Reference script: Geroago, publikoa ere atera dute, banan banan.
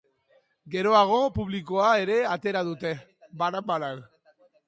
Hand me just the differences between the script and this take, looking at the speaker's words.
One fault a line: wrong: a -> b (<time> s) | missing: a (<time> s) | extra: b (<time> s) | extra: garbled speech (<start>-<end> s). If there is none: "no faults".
no faults